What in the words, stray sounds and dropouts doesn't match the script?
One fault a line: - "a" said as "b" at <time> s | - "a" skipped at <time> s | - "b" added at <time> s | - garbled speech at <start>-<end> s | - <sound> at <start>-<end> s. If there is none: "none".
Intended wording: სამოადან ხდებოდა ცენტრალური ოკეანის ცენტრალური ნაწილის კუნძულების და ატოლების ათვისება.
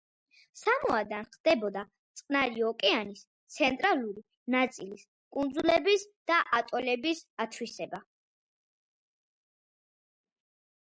- "ცენტრალური" said as "წყნარი" at 2.2 s